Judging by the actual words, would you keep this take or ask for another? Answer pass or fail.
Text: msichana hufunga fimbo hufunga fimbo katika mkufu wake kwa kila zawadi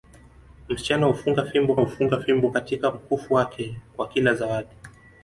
pass